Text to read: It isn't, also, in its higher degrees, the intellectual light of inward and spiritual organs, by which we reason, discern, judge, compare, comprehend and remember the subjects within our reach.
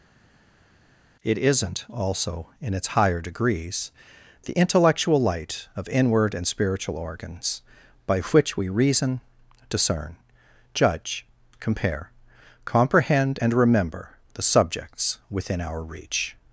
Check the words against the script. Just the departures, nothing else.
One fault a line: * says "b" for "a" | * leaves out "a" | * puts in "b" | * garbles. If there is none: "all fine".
all fine